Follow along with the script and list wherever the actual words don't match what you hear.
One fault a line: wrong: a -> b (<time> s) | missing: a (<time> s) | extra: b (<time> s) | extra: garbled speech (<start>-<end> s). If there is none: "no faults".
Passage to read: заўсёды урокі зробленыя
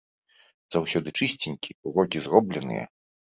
extra: чысценькі (1.2 s)